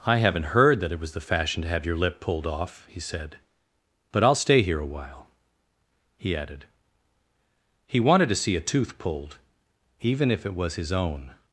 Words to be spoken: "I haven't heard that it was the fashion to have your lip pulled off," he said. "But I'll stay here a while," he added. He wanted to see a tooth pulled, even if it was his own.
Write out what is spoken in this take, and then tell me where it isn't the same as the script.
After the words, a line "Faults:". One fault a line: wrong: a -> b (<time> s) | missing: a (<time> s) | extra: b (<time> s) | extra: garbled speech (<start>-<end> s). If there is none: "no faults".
"I haven't heard that it was the fashion to have your lip pulled off," he said. "But I'll stay here a while," he added. He wanted to see a tooth pulled, even if it was his own.
Faults:
no faults